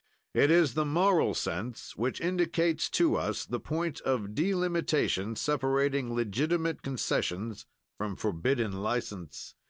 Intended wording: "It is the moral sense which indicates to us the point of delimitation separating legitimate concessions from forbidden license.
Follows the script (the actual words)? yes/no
yes